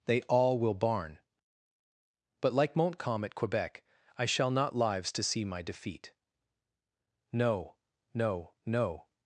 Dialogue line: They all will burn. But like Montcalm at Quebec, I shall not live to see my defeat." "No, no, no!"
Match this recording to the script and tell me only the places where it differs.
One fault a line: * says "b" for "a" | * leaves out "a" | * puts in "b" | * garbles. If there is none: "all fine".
* says "barn" for "burn"
* says "lives" for "live"